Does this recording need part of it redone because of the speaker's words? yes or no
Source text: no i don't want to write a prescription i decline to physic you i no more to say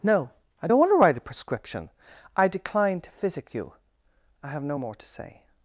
yes